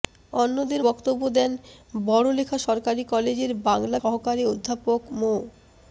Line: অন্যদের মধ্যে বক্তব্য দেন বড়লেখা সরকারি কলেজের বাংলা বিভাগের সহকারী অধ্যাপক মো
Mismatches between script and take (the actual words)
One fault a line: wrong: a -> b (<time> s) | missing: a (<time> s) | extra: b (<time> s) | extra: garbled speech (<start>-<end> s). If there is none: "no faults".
missing: মধ্যে (0.8 s)
missing: বিভাগের (4.0 s)